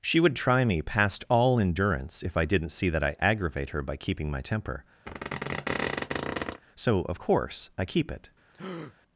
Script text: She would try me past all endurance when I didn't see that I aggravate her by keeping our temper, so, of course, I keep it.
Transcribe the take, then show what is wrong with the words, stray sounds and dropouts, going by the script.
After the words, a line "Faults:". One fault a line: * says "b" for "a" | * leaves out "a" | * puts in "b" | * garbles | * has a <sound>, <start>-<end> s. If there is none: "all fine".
She would try me past all endurance if I didn't see that I aggravate her by keeping my temper, so, of course, I keep it.
Faults:
* says "if" for "when"
* says "my" for "our"
* has a squeak, 5.1-6.6 s
* has a breath, 8.5-8.9 s